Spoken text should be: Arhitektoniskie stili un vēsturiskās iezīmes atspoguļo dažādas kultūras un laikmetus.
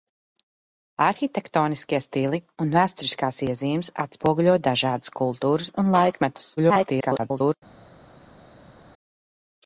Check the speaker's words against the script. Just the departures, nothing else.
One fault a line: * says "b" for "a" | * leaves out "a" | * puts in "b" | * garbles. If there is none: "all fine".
* garbles